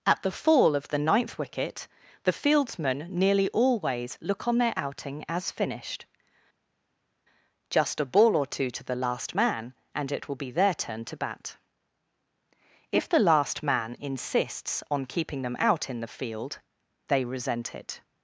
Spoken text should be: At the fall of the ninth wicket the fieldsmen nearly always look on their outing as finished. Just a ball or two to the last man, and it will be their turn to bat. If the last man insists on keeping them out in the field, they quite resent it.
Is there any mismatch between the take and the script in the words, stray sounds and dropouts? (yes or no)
yes